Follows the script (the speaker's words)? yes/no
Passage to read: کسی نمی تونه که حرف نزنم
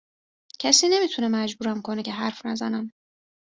no